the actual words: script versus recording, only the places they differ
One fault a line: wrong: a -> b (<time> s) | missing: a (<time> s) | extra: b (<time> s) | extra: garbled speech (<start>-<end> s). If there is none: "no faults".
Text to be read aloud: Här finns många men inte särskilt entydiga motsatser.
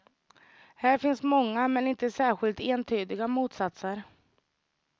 no faults